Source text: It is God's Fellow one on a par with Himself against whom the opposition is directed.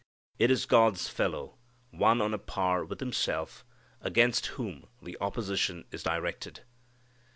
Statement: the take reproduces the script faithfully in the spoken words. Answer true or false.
true